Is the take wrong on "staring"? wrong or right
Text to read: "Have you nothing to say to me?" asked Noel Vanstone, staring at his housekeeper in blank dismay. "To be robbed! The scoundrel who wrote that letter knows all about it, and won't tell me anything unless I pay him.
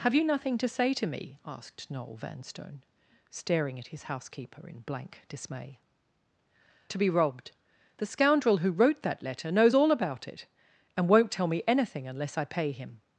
right